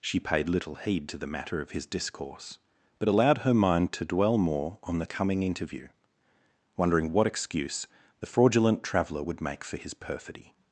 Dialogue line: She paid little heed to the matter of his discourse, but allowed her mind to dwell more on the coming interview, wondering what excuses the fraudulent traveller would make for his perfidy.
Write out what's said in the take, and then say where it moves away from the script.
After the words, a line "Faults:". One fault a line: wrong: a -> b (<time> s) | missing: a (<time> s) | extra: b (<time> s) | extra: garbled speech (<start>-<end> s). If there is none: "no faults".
She paid little heed to the matter of his discourse, but allowed her mind to dwell more on the coming interview, wondering what excuse the fraudulent traveller would make for his perfidy.
Faults:
wrong: excuses -> excuse (7.3 s)